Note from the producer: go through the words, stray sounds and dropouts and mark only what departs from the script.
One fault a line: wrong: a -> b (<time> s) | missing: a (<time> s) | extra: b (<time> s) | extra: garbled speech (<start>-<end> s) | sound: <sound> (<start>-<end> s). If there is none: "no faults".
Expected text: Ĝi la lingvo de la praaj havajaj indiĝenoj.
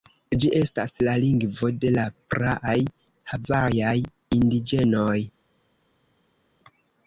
extra: estas (0.6 s)